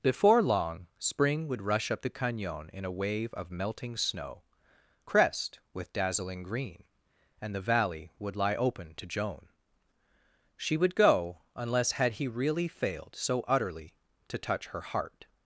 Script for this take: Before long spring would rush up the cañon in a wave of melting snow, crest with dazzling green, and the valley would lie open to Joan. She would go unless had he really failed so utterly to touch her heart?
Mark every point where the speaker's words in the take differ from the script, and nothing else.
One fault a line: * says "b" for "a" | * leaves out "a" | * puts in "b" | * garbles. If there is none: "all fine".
all fine